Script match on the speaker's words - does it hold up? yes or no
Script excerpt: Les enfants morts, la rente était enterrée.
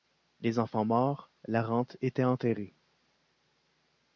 yes